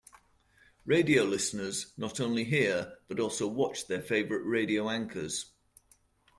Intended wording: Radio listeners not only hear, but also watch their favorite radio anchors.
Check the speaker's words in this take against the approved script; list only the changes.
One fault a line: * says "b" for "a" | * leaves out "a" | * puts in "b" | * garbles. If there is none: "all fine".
all fine